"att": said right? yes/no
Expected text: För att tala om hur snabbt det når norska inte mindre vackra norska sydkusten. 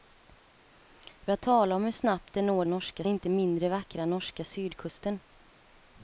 yes